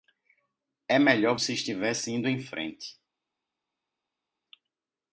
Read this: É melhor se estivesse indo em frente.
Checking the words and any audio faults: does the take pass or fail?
pass